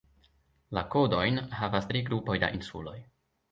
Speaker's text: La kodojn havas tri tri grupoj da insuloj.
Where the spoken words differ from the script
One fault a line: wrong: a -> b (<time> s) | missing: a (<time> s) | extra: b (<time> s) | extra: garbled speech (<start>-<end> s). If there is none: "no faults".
missing: tri (2.0 s)